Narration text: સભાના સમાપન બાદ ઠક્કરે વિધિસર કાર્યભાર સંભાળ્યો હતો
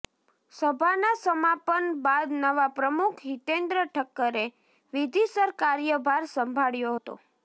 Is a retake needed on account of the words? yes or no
yes